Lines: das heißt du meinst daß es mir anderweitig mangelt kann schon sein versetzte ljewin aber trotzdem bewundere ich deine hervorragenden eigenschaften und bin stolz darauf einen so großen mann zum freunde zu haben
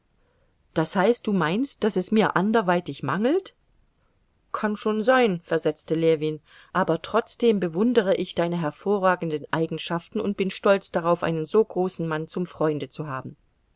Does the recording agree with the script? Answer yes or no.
yes